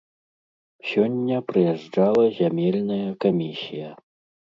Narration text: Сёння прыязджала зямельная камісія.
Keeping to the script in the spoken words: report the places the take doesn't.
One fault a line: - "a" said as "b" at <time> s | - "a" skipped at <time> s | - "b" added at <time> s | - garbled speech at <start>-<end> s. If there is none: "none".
none